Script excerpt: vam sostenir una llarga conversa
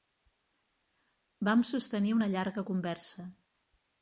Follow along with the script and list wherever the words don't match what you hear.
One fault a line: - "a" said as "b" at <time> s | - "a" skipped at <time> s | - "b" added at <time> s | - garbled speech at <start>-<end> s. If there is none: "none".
none